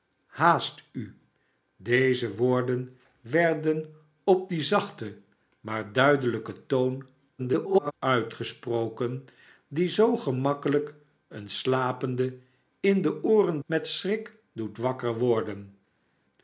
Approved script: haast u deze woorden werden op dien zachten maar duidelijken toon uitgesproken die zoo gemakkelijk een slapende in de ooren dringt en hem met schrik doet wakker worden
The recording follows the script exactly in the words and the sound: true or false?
false